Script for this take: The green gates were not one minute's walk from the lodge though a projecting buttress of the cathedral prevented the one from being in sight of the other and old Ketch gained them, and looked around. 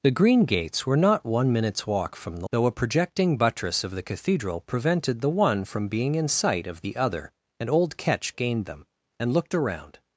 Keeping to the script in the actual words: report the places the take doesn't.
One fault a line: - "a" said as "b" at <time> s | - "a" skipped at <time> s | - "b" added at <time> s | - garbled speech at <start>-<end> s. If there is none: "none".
- "lodge" skipped at 2.5 s